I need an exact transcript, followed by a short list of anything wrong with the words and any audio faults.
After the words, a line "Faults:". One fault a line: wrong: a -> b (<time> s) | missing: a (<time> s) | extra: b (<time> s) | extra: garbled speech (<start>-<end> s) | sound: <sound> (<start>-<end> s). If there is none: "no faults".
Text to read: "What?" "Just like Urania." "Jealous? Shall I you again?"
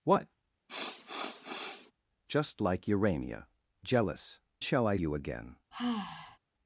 "What?" "Just like Urania." "Jealous? Shall I you again?"
Faults:
sound: sniff (0.7-1.9 s)
sound: sigh (5.7-6.4 s)